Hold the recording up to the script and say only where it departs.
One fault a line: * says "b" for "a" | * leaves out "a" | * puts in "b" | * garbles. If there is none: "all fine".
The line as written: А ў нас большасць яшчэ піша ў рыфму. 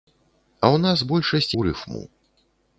* leaves out "яшчэ піша"